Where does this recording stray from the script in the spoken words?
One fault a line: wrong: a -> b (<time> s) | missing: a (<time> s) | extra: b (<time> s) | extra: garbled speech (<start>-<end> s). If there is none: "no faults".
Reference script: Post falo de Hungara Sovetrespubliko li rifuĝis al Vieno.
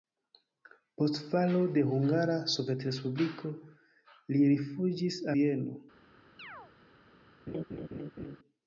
missing: al (5.2 s)